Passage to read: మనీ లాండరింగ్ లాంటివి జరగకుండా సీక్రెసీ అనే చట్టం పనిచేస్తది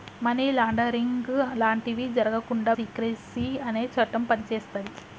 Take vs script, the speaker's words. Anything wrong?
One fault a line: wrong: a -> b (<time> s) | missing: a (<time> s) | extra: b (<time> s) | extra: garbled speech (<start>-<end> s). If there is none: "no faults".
no faults